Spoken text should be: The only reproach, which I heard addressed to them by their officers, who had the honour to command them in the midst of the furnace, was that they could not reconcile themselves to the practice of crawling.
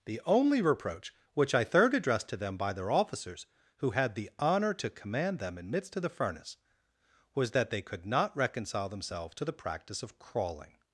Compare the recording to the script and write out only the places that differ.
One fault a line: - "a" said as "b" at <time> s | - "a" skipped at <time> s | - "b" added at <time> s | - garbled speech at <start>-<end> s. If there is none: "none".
- "heard" said as "third" at 1.6 s
- "the" skipped at 5.7 s